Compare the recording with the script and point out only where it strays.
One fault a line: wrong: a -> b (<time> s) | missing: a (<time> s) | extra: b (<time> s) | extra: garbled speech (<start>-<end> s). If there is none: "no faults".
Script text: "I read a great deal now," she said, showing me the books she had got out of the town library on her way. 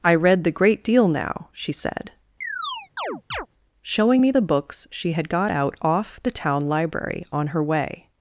wrong: a -> the (0.4 s)
wrong: of -> off (5.8 s)